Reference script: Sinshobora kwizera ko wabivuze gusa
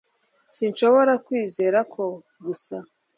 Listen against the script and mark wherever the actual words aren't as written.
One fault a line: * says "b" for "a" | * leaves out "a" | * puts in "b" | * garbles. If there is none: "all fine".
* leaves out "wabivuze"